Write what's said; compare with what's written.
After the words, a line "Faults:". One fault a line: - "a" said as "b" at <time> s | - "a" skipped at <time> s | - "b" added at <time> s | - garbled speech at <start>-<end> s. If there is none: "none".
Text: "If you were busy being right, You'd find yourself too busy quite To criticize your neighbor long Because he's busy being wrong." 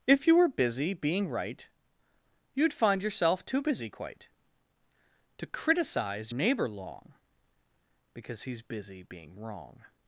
"If you were busy being right, You'd find yourself too busy quite To criticize neighbor long Because he's busy being wrong."
Faults:
- "your" skipped at 6.3 s